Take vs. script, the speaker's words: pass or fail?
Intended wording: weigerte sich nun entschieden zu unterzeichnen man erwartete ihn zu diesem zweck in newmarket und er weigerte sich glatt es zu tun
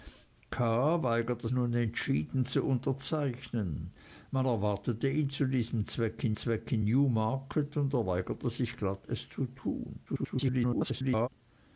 fail